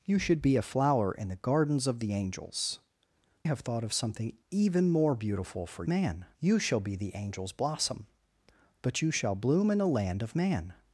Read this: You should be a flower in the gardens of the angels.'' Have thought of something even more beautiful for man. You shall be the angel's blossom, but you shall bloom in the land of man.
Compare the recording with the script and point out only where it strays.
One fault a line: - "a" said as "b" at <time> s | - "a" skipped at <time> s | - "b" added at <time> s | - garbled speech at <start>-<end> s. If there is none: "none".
none